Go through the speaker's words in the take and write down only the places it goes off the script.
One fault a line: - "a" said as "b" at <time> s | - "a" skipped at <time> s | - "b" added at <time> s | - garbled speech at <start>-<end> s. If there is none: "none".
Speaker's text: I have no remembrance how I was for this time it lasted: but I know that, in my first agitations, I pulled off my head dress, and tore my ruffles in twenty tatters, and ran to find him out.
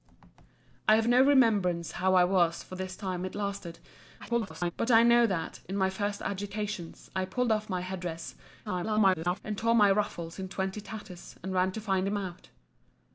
- garbled speech at 4.2-4.7 s
- garbled speech at 8.6-9.4 s